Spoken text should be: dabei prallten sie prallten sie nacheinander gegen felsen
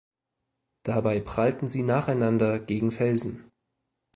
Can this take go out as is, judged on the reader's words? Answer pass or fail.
fail